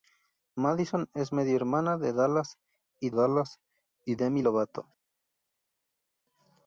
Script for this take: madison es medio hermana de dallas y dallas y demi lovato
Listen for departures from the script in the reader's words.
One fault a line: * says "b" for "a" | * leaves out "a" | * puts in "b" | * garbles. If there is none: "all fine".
all fine